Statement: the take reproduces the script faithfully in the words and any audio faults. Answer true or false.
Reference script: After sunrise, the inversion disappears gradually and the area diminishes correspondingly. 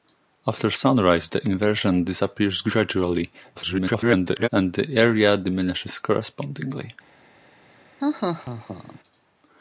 false